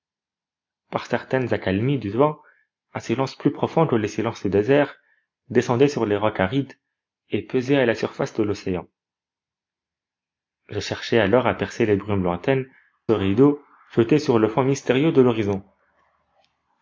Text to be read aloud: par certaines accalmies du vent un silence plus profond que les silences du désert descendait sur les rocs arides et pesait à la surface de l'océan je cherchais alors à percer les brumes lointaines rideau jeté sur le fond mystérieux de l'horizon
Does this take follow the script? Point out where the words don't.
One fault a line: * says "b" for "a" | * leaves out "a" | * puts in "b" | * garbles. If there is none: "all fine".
all fine